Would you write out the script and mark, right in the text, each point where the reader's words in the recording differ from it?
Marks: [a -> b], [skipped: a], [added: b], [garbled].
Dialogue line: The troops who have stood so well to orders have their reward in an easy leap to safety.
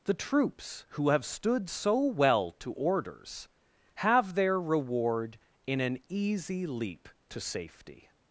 The troops who have stood so well to orders have their reward in an easy leap to safety.